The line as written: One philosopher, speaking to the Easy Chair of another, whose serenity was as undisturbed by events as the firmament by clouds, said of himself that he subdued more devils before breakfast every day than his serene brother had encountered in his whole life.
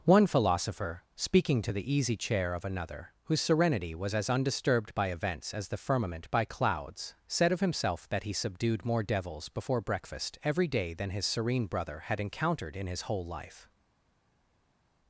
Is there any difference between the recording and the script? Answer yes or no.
no